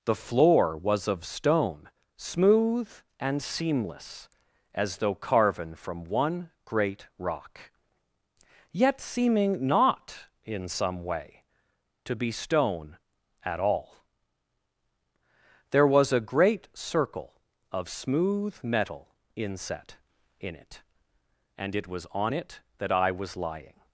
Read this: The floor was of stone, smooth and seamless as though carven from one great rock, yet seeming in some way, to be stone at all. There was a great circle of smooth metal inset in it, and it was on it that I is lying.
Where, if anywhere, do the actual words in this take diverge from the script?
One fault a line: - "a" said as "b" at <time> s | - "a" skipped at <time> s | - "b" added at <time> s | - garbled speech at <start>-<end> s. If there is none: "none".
- "not" added at 9.7 s
- "is" said as "was" at 23.1 s